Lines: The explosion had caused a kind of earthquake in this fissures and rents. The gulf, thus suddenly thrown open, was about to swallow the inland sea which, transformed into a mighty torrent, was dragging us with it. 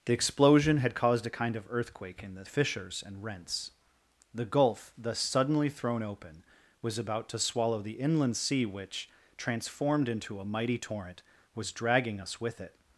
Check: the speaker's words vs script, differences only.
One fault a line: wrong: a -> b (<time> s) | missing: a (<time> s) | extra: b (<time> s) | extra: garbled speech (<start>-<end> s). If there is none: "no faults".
no faults